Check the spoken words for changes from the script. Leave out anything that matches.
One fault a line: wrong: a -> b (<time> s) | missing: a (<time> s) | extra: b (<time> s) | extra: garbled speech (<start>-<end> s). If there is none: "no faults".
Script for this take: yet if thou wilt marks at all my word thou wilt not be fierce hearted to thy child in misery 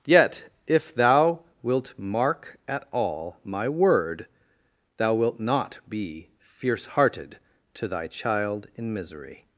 wrong: marks -> mark (1.9 s)